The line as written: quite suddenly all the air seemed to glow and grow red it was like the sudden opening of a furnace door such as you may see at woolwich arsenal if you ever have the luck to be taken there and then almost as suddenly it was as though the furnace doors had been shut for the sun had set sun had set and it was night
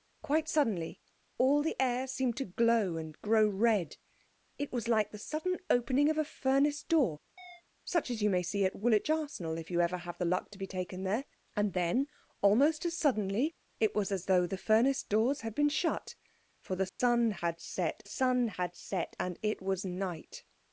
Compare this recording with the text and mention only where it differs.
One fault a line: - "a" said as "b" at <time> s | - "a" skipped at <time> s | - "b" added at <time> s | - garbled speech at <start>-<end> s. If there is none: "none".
none